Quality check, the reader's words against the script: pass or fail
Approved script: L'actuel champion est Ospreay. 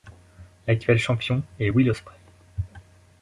fail